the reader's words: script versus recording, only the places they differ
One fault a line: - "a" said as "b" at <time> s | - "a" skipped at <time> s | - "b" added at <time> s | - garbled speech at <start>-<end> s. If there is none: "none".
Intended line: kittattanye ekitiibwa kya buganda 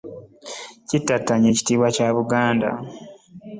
none